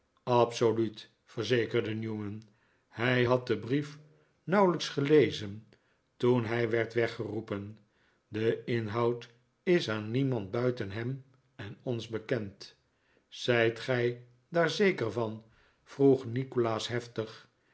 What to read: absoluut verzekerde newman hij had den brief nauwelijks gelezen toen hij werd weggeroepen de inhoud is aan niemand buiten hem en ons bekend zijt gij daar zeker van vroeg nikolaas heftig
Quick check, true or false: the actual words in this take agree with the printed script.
true